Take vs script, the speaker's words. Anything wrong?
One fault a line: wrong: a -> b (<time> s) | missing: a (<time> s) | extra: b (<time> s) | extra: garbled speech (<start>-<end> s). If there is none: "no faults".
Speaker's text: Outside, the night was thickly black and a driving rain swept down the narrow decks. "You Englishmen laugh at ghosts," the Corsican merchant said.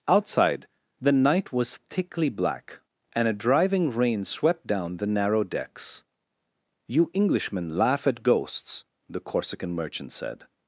no faults